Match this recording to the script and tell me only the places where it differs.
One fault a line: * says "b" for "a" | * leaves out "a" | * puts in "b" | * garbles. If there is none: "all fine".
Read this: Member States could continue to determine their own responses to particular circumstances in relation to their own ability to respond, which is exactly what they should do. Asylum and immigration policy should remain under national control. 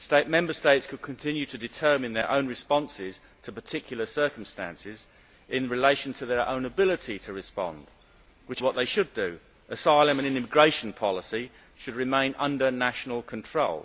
* leaves out "is exactly"